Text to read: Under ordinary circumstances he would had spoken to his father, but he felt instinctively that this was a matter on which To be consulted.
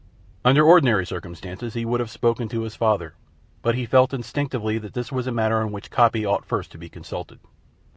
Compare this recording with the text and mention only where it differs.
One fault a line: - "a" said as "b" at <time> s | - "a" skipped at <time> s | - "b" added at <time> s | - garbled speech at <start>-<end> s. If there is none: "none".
- "had" said as "have" at 2.0 s
- "Coppy ought first" added at 5.9 s